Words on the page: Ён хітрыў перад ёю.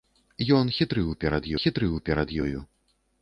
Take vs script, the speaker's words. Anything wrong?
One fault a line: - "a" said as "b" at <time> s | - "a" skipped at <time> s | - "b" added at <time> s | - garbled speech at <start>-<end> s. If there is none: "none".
- "хітрыў перад" added at 1.6 s